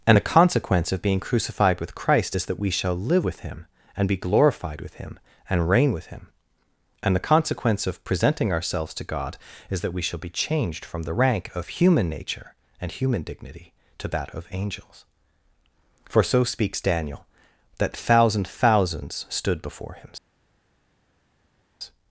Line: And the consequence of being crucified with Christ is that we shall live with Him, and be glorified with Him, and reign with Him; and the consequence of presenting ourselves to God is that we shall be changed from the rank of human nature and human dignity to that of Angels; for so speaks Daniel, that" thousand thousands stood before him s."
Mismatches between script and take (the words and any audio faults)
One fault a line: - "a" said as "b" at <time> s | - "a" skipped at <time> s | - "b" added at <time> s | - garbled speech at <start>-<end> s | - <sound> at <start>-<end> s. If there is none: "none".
- "s" skipped at 20.1 s